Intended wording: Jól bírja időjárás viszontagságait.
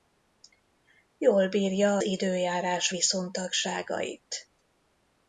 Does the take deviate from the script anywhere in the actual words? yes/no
no